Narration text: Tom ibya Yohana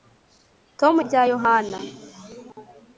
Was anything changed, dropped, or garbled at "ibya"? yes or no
no